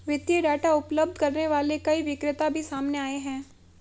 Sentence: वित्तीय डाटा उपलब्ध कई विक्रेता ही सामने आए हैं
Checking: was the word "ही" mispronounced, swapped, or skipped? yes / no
yes